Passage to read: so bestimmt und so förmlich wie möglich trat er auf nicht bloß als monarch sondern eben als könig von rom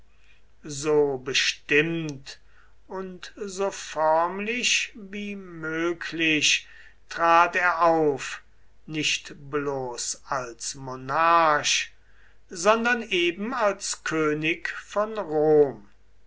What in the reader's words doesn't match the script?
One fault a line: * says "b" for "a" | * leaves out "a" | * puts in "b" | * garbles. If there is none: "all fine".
all fine